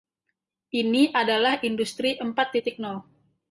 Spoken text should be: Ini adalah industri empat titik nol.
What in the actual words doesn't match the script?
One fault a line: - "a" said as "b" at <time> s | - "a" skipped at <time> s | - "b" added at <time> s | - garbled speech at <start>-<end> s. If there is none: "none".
none